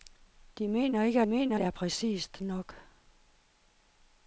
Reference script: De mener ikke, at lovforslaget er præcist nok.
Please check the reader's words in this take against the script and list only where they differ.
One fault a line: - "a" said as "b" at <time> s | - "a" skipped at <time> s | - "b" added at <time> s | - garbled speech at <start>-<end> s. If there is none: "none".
- "lovforslaget" said as "mener" at 1.2 s